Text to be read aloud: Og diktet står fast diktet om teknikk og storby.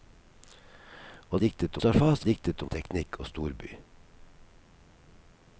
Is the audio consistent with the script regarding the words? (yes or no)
yes